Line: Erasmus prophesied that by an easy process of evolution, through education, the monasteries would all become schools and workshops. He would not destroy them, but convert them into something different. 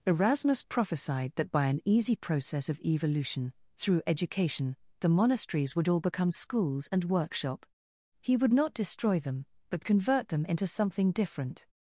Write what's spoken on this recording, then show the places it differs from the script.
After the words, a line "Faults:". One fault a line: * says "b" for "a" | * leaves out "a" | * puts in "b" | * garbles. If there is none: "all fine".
Erasmus prophesied that by an easy process of evolution, through education, the monasteries would all become schools and workshop. He would not destroy them, but convert them into something different.
Faults:
* says "workshop" for "workshops"